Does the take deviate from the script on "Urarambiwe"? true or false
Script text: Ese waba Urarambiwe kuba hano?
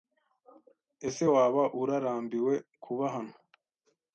false